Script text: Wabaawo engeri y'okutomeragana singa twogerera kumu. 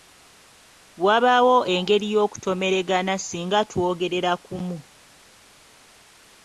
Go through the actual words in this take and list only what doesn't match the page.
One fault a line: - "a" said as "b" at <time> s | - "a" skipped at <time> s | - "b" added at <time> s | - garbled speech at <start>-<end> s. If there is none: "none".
none